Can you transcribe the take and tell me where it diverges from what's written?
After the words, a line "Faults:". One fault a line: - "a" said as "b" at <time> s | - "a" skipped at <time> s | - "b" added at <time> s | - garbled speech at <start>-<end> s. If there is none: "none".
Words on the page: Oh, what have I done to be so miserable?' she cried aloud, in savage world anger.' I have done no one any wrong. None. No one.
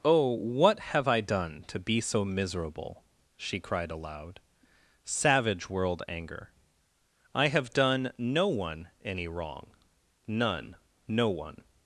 Oh, what have I done to be so miserable?' she cried aloud, savage world anger.' I have done no one any wrong. None. No one.
Faults:
- "in" skipped at 4.4 s